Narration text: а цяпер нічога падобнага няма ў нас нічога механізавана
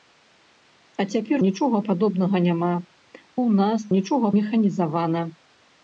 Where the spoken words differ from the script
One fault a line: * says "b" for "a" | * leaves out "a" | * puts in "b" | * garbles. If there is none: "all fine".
all fine